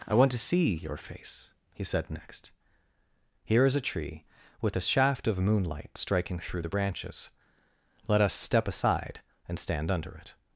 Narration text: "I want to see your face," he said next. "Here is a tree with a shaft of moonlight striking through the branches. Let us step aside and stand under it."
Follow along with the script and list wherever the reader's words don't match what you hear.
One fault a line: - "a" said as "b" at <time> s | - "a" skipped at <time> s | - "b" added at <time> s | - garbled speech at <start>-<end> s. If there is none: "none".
none